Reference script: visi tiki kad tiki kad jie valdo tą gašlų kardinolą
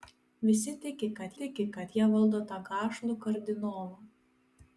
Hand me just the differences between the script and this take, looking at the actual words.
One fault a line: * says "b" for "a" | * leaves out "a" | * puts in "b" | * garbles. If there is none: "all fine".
all fine